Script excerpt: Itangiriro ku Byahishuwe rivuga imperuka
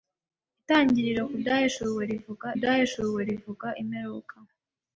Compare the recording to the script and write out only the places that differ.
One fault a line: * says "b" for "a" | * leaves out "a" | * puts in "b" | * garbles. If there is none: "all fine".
* puts in "Byahishuwe rivuga"